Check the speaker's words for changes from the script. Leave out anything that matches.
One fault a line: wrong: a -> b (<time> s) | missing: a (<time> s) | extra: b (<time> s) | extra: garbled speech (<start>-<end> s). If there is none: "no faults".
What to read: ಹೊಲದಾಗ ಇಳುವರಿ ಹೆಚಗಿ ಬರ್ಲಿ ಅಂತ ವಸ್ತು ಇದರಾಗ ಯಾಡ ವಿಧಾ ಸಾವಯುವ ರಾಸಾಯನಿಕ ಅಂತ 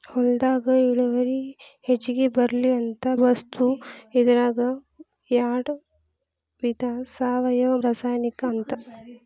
no faults